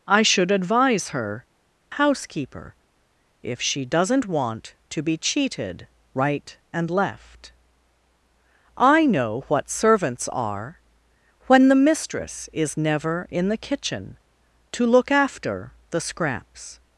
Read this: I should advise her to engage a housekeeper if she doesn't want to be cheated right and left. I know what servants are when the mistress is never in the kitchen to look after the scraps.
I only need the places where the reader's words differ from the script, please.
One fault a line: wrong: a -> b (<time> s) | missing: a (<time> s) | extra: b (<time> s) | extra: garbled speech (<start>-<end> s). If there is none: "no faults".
missing: to engage a (1.4 s)